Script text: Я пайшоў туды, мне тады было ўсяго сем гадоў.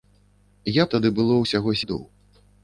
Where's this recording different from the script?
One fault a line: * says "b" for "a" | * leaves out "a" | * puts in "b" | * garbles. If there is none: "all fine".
* leaves out "пайшоў туды мне"
* leaves out "сем"